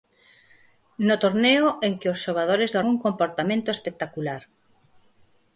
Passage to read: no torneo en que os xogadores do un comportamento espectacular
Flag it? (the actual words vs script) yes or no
no